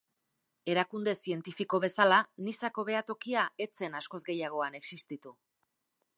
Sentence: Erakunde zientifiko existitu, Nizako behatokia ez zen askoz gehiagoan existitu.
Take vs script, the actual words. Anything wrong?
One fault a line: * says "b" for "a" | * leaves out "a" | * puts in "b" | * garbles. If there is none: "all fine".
* says "bezala" for "existitu"